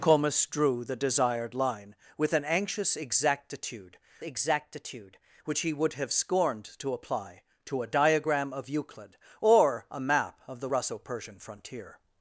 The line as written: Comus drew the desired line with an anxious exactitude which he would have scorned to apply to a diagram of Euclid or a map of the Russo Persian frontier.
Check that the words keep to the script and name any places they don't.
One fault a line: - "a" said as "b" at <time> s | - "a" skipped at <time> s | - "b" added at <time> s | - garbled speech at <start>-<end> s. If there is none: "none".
- "exactitude" added at 4.2 s